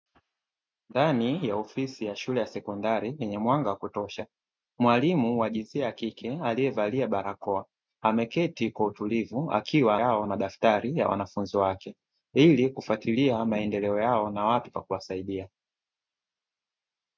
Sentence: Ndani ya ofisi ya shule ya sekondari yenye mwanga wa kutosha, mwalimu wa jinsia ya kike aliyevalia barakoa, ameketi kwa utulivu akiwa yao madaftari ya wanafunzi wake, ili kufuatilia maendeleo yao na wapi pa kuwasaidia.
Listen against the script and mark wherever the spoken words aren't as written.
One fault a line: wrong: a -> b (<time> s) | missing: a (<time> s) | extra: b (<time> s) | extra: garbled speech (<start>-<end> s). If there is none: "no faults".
no faults